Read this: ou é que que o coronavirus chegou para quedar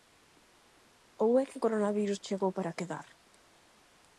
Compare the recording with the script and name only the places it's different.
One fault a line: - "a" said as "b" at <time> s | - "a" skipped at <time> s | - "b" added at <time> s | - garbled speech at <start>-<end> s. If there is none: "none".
- "que" skipped at 1.6 s